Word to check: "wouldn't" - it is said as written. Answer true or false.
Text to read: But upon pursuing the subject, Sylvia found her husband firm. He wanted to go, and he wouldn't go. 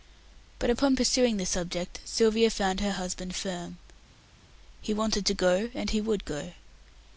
false